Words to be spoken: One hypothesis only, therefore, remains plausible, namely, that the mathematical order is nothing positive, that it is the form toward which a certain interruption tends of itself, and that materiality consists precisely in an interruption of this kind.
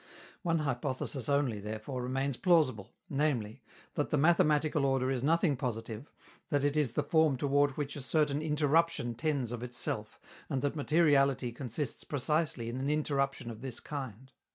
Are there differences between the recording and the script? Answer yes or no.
no